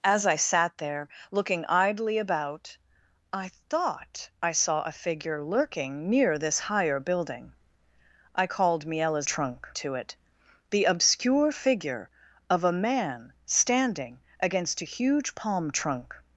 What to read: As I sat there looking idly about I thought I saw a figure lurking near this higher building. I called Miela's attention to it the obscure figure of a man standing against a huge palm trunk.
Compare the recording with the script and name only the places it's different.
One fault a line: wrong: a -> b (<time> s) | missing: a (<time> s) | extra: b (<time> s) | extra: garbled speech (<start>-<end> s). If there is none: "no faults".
wrong: attention -> trunk (9.2 s)